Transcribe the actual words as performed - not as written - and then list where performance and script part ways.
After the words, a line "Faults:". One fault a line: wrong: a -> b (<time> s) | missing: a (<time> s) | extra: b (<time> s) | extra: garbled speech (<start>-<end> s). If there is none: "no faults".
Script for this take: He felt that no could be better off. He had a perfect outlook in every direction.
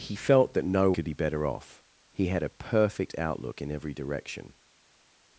He felt that no could be better off. He had a perfect outlook in every direction.
Faults:
no faults